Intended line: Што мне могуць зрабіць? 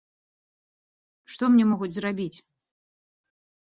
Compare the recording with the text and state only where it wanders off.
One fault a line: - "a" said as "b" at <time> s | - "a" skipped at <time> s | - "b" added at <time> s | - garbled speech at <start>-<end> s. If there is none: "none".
none